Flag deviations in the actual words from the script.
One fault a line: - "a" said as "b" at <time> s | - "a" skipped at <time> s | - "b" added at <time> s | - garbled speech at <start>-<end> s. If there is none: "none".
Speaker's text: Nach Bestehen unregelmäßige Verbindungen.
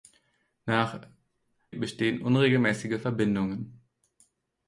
none